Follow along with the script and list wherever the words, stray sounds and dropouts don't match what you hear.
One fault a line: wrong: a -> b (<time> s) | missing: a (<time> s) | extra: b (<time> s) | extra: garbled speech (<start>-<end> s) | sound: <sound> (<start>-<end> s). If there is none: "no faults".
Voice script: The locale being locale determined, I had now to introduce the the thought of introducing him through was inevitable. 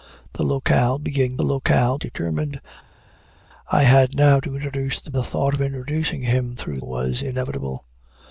no faults